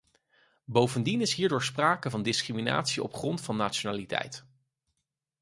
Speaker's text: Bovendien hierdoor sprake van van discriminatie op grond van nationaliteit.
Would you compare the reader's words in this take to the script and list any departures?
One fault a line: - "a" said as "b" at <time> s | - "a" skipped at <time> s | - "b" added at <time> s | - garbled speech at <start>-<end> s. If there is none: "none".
- "is" added at 1.2 s
- "van" skipped at 2.2 s